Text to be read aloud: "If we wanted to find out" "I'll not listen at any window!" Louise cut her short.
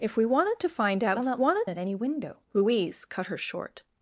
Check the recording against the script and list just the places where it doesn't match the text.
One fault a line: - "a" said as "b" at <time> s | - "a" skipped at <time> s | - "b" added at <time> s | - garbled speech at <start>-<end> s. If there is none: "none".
- "listen" said as "wanted" at 1.3 s